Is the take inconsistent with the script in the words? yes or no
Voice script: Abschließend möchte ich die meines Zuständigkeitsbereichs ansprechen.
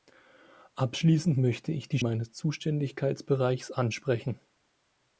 no